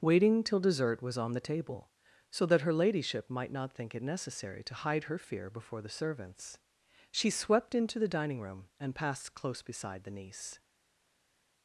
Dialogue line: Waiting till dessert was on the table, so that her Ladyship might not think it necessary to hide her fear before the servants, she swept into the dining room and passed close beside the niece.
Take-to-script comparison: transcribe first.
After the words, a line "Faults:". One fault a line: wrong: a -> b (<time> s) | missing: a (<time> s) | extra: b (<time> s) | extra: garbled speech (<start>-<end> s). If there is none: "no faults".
Waiting till dessert was on the table, so that her Ladyship might not think it necessary to hide her fear before the servants, she swept into the dining room and passed close beside the niece.
Faults:
no faults